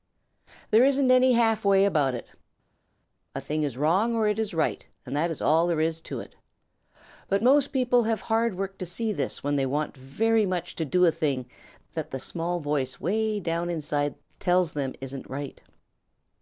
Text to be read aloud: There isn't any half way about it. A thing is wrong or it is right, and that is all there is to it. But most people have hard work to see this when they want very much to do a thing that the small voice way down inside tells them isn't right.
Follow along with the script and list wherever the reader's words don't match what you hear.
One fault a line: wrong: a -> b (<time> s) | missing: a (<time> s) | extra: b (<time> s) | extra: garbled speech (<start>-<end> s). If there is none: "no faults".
no faults